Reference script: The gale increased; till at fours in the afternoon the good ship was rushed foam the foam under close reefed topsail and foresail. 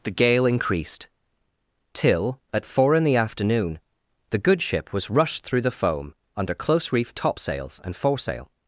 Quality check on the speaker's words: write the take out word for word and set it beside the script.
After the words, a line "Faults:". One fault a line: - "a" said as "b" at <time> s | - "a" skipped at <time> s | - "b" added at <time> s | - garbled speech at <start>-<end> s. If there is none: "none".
The gale increased; till at four in the afternoon the good ship was rushed through the foam under close reefed topsails and foresail.
Faults:
- "fours" said as "four" at 2.6 s
- "foam" said as "through" at 5.4 s
- "topsail" said as "topsails" at 7.1 s